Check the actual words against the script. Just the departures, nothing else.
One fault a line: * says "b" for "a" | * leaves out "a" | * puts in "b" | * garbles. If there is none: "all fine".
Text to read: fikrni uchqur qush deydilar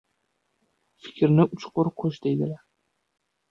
all fine